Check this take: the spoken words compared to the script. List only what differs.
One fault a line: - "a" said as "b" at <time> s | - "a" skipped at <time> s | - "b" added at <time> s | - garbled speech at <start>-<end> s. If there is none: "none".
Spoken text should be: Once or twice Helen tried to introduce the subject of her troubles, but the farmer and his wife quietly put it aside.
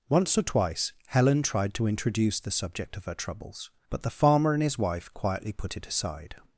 none